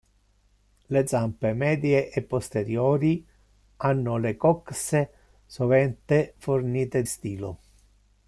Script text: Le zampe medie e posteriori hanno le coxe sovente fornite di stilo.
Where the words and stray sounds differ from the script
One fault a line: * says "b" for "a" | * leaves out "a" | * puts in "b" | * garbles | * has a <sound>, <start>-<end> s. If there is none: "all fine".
* leaves out "di"